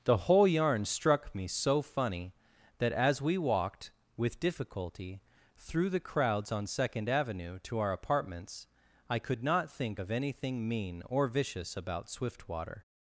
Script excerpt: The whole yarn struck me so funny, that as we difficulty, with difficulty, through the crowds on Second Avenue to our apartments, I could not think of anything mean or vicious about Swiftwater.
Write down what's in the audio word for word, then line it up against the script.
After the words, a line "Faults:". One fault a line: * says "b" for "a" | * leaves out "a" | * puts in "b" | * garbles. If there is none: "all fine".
The whole yarn struck me so funny, that as we walked, with difficulty, through the crowds on Second Avenue to our apartments, I could not think of anything mean or vicious about Swiftwater.
Faults:
* says "walked" for "difficulty"